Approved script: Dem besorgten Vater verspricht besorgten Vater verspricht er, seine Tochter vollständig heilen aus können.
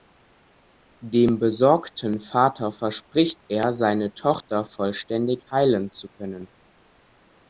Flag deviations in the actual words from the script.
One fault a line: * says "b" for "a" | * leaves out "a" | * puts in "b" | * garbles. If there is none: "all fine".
* leaves out "besorgten Vater verspricht"
* says "zu" for "aus"